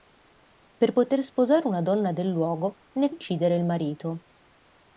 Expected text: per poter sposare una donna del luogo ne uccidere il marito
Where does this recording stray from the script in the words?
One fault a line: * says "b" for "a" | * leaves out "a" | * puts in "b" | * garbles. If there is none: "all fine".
all fine